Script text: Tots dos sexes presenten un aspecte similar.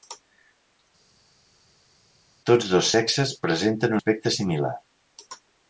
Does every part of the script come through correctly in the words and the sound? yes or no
no